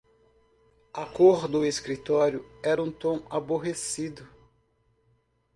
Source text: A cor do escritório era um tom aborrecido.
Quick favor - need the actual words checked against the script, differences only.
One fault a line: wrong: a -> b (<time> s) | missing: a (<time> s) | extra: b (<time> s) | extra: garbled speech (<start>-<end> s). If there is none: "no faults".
no faults